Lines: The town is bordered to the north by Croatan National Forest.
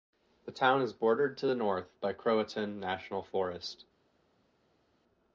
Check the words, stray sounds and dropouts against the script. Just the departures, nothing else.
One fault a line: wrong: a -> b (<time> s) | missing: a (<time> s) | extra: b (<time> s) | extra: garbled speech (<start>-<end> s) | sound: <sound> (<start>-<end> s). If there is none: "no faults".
no faults